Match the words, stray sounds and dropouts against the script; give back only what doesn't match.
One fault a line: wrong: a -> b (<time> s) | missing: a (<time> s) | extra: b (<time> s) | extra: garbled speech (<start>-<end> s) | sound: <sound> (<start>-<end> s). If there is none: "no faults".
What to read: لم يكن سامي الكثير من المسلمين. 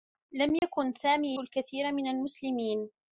sound: dropout (0.6-0.6 s)